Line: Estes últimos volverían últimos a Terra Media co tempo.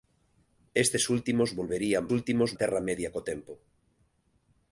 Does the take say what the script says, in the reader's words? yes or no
yes